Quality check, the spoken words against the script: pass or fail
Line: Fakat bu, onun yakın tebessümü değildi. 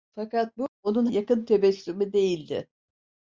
pass